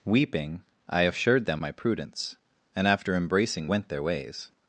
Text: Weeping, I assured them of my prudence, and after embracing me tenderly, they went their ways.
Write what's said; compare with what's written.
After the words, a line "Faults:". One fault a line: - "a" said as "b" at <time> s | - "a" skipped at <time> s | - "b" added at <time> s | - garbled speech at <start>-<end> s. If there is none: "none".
Weeping, I assured them my prudence, and after embracing went their ways.
Faults:
- "of" skipped at 1.6 s
- "me tenderly they" skipped at 3.7 s